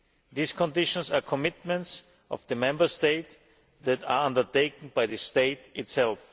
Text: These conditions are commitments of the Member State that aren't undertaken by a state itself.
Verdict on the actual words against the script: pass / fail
fail